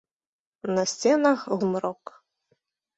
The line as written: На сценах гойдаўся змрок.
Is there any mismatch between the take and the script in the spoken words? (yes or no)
yes